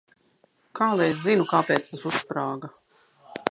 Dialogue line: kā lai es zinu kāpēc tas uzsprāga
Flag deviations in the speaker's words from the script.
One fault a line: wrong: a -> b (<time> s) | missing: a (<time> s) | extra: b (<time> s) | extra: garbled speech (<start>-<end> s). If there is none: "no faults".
no faults